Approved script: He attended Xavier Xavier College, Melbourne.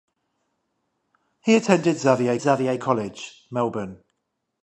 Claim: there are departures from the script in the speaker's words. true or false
false